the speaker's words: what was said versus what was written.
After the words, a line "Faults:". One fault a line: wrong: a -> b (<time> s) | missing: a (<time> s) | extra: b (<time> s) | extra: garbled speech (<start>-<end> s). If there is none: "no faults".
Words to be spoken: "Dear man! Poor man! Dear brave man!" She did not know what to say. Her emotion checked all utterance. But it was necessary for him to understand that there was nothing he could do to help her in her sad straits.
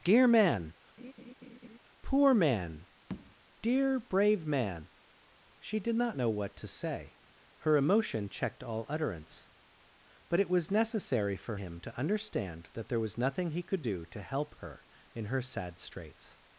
"Dear man! Poor man! Dear brave man!" She did not know what to say. Her emotion checked all utterance. But it was necessary for him to understand that there was nothing he could do to help her in her sad straits.
Faults:
no faults